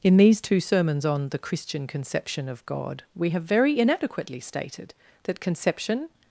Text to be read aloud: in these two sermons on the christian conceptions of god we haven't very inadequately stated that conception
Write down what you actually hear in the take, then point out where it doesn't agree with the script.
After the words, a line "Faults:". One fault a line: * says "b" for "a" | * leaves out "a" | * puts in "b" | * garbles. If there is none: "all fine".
in these two sermons on the christian conception of god we have very inadequately stated that conception
Faults:
* says "conception" for "conceptions"
* says "have" for "haven't"